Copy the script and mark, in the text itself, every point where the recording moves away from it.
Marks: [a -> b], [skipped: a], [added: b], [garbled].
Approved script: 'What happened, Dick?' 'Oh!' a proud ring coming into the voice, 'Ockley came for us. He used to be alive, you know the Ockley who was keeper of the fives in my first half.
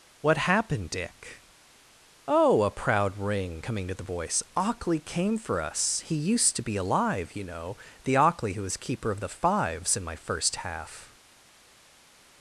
'What happened, Dick?' 'Oh!' a proud ring coming [into -> to] the voice, 'Ockley came for us. He used to be alive, you know the Ockley who was keeper of the fives in my first half.